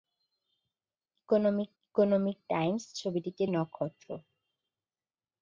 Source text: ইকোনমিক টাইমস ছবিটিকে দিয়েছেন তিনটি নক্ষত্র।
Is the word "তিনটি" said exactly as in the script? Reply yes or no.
no